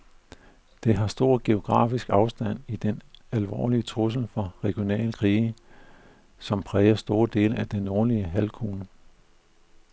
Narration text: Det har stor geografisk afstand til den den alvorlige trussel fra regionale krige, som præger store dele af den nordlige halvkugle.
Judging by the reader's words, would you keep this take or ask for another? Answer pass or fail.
fail